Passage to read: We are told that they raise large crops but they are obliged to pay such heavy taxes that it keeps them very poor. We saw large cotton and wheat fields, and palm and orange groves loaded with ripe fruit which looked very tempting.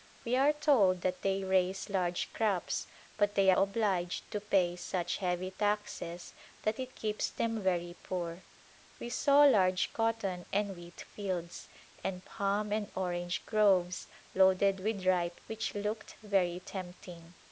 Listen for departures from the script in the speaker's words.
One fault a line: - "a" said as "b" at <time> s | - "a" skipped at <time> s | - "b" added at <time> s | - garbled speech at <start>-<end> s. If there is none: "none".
- "are" skipped at 3.5 s
- "fruit" skipped at 15.4 s